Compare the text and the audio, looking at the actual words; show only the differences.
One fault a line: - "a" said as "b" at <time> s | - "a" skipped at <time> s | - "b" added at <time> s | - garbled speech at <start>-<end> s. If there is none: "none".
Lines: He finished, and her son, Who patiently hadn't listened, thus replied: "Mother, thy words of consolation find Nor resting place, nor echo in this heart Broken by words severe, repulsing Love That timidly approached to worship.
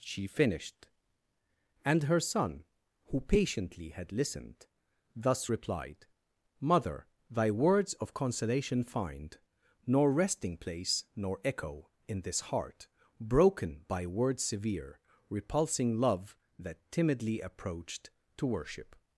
- "He" said as "She" at 0.0 s
- "hadn't" said as "had" at 3.9 s